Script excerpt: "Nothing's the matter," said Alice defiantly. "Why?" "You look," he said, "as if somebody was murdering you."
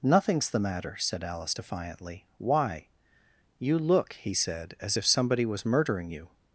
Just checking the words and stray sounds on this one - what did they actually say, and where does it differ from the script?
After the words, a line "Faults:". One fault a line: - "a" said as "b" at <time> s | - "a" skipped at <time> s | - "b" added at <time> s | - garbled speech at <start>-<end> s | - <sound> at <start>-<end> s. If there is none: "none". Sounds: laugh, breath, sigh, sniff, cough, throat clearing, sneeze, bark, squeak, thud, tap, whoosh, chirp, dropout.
"Nothing's the matter," said Alice defiantly. "Why?" "You look," he said, "as if somebody was murdering you."
Faults:
none